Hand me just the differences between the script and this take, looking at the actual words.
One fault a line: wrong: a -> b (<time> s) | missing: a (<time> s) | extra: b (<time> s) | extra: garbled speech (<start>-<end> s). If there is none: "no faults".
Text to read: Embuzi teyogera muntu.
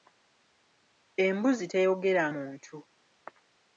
no faults